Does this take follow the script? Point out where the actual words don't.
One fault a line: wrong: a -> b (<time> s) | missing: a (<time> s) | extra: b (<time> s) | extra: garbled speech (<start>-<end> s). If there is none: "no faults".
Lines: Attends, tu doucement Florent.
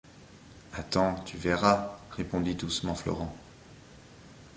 extra: verras répondit (1.4 s)